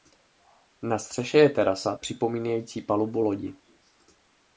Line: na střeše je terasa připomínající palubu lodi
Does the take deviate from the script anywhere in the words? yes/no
no